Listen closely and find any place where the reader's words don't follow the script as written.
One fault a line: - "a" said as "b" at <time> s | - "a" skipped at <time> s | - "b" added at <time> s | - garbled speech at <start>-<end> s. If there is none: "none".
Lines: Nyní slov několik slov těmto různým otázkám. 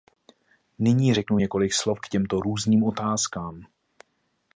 - "slov" said as "řeknu" at 1.1 s
- "k" added at 2.0 s